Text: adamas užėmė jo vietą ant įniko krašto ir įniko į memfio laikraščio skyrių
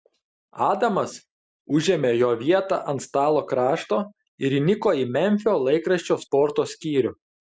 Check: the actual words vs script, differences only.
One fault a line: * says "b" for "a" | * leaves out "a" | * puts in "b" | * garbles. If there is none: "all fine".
* says "stalo" for "įniko"
* puts in "sporto"